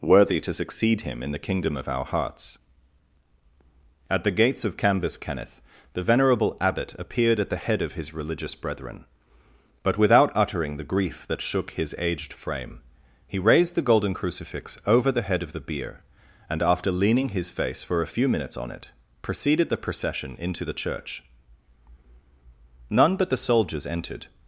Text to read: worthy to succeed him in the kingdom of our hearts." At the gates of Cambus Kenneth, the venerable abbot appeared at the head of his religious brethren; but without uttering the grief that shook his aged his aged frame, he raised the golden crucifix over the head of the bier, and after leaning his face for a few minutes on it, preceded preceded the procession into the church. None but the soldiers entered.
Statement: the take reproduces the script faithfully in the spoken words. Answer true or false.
false